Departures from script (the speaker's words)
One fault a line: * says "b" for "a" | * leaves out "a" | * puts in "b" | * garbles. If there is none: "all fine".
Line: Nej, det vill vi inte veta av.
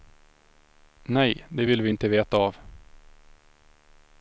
all fine